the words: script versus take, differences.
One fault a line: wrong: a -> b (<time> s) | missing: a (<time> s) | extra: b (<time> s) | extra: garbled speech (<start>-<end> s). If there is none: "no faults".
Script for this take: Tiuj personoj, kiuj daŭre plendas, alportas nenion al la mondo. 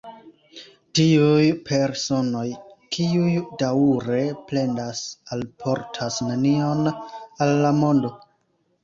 no faults